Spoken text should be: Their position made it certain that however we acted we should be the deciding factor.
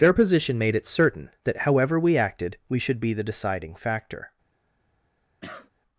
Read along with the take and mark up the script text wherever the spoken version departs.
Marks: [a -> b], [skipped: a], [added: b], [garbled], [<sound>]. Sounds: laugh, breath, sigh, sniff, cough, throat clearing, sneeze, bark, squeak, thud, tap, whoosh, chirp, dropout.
Their position made it certain that however we acted we should be the deciding factor. [cough]